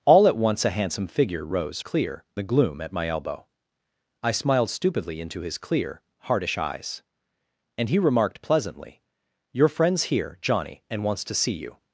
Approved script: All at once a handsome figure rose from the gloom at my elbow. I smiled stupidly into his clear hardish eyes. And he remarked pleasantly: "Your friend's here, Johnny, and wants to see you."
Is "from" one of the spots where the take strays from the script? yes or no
yes